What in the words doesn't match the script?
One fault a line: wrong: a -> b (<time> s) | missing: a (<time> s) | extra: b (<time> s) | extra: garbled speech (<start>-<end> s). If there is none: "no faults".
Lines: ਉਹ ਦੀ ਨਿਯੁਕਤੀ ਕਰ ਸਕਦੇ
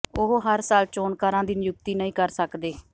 extra: ਹਰ ਸਾਲ ਚੋਣਕਾਰਾਂ (0.4 s)
extra: ਨਹੀਂ (1.9 s)